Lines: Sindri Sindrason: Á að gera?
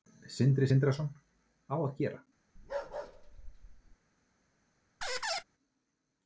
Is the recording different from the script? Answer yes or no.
no